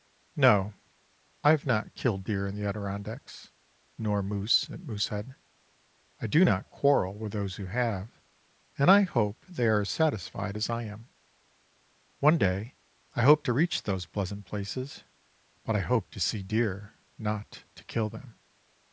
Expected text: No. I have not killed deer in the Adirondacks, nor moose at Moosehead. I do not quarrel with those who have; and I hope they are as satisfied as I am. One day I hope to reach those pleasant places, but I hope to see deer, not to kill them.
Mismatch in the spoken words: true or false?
false